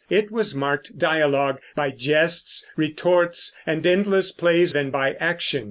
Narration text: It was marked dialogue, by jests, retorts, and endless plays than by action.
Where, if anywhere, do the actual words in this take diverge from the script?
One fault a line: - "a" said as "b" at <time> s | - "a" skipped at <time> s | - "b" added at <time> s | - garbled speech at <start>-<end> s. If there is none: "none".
none